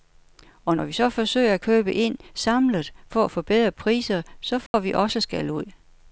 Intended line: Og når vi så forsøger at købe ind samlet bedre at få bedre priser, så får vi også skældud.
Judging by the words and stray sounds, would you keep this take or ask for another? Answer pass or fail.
fail